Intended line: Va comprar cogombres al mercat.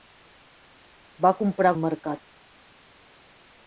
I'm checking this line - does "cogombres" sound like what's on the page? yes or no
no